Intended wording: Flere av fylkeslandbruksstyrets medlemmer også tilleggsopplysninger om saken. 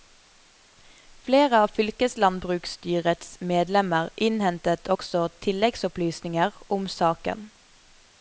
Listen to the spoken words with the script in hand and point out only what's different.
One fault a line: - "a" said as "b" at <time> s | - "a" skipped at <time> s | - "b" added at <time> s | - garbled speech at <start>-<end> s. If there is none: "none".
- "innhentet" added at 4.3 s